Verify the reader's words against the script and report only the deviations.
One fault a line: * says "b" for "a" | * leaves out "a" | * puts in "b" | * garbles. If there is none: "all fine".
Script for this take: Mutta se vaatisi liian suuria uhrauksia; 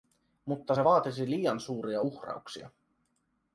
all fine